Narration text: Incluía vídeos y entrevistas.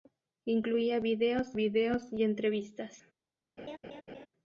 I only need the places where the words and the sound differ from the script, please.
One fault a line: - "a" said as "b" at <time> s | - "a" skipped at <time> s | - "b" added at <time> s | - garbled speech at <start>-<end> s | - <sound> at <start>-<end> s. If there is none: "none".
- "vídeos" added at 1.5 s
- laugh at 3.6-4.3 s